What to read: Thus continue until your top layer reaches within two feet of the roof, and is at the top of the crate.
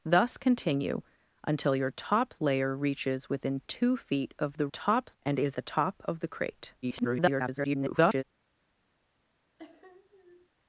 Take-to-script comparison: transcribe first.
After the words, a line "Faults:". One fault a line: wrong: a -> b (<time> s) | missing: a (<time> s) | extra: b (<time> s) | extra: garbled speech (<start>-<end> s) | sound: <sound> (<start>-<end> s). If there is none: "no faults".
Thus continue until your top layer reaches within two feet of the top, and is the top of the crate. [garbled]
Faults:
wrong: roof -> top (4.7 s)
missing: at (5.6 s)
extra: garbled speech (6.8-8.2 s)
sound: sniff (9.6-10.5 s)